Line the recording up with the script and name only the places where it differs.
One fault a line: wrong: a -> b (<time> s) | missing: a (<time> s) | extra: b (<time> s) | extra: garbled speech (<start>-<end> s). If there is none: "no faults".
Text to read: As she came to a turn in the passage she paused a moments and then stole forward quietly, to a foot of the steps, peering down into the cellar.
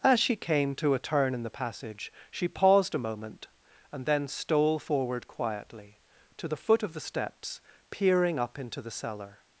wrong: moments -> moment (3.0 s)
wrong: a -> the (6.5 s)
wrong: down -> up (8.4 s)